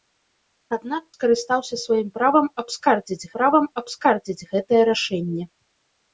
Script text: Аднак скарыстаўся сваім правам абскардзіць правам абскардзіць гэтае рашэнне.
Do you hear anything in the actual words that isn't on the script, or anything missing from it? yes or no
no